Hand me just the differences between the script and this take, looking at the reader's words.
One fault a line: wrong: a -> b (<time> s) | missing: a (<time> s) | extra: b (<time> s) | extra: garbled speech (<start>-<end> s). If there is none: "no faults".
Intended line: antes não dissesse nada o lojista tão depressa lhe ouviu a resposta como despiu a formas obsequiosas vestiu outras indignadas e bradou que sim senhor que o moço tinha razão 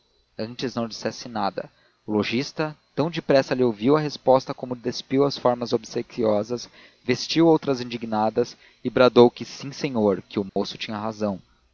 wrong: a -> as (5.2 s)